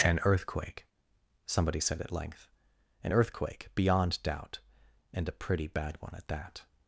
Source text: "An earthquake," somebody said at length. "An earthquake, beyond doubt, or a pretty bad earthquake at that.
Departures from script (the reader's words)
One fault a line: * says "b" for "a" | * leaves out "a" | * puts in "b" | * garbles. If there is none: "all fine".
* says "and" for "or"
* says "one" for "earthquake"